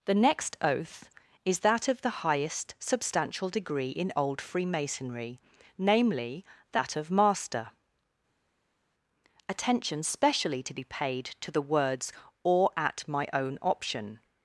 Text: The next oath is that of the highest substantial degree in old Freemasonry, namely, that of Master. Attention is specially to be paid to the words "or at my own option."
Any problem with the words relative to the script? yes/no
yes